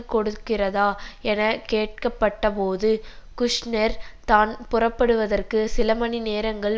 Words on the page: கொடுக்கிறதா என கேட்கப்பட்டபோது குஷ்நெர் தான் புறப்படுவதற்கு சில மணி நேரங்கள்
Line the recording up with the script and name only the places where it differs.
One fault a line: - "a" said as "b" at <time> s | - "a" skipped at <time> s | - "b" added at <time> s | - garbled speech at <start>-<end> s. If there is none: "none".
none